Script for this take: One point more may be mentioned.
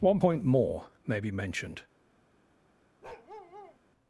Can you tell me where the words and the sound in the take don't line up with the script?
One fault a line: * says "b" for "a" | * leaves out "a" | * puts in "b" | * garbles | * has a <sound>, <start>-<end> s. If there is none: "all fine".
* has a bark, 3.0-3.8 s